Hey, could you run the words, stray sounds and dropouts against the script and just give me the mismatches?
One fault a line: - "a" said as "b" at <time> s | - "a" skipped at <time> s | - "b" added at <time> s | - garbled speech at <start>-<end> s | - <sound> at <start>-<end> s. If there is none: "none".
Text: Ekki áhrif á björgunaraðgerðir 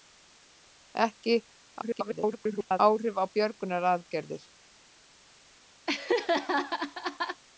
- garbled speech at 1.8-2.8 s
- laugh at 5.9-7.4 s